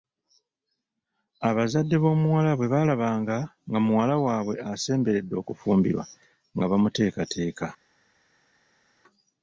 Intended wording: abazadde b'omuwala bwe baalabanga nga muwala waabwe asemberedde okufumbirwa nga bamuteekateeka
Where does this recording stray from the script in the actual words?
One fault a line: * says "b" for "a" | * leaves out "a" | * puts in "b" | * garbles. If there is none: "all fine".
all fine